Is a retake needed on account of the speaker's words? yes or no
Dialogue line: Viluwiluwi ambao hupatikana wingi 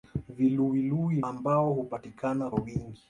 no